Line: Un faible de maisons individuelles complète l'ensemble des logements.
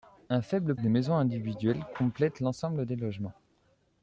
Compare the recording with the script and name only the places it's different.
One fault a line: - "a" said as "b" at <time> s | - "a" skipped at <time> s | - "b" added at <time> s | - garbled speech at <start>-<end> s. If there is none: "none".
none